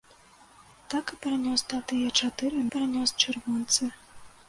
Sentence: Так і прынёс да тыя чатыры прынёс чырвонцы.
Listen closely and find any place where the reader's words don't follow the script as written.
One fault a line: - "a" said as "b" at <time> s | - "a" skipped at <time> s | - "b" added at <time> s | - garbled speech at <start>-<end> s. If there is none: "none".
none